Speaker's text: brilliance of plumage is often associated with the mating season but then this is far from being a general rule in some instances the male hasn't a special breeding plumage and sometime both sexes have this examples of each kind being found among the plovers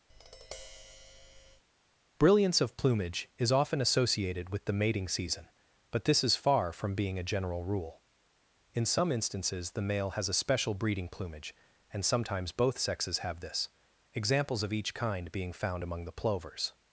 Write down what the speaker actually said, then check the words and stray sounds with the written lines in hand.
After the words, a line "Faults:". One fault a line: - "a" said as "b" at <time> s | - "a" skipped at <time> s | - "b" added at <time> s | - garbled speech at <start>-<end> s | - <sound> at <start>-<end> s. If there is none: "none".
brilliance of plumage is often associated with the mating season but this is far from being a general rule in some instances the male has a special breeding plumage and sometimes both sexes have this examples of each kind being found among the plovers
Faults:
- tap at 0.1-1.6 s
- "then" skipped at 6.1 s
- "hasn't" said as "has" at 10.1 s
- "sometime" said as "sometimes" at 12.1 s